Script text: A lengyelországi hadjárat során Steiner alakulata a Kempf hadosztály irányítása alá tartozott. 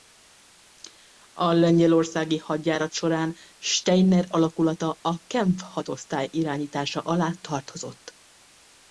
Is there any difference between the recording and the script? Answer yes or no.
no